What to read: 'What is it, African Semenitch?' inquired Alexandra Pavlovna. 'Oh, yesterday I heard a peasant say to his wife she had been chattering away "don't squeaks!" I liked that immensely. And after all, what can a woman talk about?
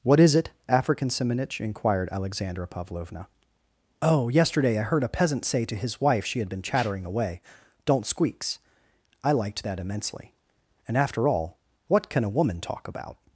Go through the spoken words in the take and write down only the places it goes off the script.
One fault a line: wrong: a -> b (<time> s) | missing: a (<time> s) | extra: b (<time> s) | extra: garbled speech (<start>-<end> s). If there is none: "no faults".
no faults